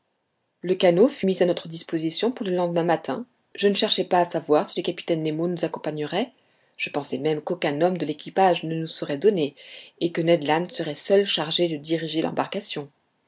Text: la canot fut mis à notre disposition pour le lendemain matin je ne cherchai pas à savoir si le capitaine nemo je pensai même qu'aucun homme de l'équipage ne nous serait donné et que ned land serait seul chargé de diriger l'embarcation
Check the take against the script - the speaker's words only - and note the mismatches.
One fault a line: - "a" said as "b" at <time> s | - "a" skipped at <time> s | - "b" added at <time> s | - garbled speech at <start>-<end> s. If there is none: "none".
- "la" said as "le" at 0.6 s
- "nous accompagnerait" added at 5.5 s